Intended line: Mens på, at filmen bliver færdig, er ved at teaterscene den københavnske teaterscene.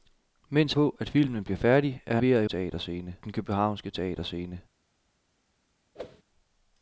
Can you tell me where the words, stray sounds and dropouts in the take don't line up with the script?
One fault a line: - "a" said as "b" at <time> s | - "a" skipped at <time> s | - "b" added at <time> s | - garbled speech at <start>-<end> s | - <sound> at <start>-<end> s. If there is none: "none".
- whoosh at 5.9-6.2 s